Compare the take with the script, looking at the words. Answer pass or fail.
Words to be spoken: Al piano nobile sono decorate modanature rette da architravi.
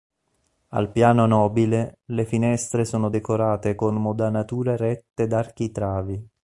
fail